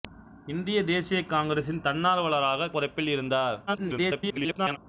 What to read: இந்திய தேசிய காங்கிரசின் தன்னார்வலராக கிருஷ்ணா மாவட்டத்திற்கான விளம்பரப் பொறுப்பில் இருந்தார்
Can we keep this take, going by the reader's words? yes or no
no